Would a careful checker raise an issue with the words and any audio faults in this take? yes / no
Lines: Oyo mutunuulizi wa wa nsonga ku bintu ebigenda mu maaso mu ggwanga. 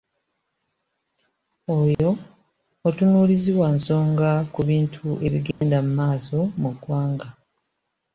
yes